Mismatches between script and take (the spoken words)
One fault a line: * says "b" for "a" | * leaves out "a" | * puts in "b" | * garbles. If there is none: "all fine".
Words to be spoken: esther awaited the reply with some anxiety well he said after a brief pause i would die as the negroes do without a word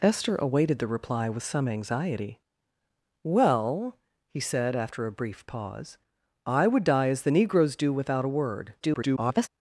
* garbles